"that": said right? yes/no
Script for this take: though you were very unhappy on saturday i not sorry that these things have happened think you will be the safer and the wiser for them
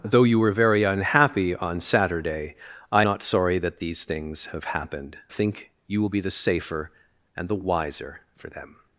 yes